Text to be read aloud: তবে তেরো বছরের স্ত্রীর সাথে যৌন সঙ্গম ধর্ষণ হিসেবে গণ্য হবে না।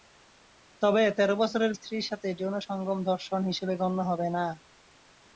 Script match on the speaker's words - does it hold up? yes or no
yes